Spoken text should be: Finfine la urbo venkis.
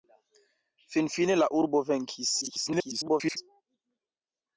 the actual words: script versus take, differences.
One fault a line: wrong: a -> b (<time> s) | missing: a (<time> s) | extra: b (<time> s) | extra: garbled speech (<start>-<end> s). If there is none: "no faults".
extra: garbled speech (2.4-3.4 s)